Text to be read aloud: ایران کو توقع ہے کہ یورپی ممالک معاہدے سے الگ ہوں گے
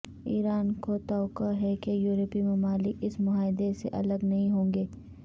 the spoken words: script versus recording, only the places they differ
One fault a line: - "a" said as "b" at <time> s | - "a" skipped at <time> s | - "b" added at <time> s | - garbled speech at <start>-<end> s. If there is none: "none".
- "اس" added at 3.0 s
- "نہیں" added at 4.2 s